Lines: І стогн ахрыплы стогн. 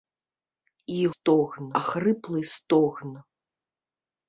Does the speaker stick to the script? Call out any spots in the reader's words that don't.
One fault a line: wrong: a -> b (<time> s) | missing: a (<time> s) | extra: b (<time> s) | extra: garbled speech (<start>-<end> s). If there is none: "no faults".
no faults